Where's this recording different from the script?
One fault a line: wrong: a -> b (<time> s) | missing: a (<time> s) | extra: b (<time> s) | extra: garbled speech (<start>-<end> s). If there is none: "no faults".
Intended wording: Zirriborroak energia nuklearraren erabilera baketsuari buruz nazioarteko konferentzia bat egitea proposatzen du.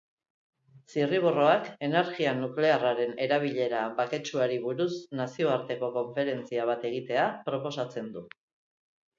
no faults